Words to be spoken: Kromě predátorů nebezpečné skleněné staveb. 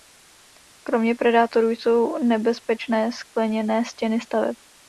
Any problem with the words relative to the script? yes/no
yes